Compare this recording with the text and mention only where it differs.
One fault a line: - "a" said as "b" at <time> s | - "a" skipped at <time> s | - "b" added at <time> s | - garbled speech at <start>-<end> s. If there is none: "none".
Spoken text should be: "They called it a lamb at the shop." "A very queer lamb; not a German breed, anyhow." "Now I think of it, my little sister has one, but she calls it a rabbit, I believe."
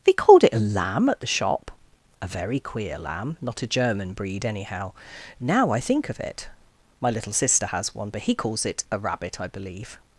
- "she" said as "he" at 8.2 s